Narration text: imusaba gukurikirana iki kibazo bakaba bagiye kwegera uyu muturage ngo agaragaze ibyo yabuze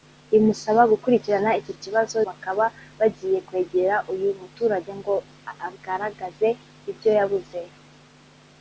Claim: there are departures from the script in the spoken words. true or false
false